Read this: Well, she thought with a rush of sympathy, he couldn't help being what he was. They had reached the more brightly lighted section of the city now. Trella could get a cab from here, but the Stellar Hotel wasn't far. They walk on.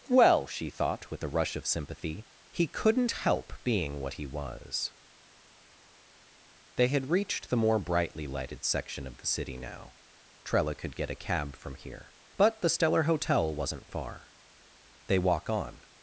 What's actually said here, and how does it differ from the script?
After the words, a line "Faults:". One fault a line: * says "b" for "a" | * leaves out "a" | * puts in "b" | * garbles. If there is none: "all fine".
Well, she thought with a rush of sympathy, he couldn't help being what he was. They had reached the more brightly lighted section of the city now. Trella could get a cab from here, but the Stellar Hotel wasn't far. They walk on.
Faults:
all fine